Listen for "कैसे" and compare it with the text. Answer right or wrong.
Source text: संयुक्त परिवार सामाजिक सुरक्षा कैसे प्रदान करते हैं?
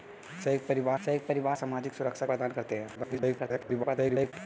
wrong